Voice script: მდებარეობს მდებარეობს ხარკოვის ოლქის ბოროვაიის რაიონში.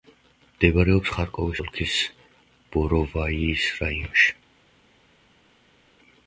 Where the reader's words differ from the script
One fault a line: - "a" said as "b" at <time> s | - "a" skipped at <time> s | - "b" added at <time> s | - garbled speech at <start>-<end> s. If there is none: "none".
- "მდებარეობს" skipped at 1.1 s